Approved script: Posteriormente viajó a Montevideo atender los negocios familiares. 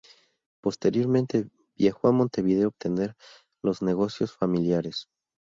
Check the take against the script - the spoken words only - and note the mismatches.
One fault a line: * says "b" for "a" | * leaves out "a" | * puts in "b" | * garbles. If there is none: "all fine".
all fine